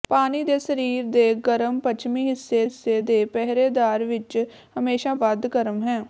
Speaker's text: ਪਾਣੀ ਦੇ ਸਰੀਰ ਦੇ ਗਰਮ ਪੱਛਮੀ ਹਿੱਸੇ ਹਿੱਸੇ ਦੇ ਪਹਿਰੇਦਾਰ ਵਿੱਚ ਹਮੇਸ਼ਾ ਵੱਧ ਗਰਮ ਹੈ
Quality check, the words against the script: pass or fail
pass